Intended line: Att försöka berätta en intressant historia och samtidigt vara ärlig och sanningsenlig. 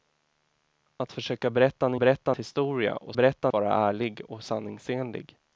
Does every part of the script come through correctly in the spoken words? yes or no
no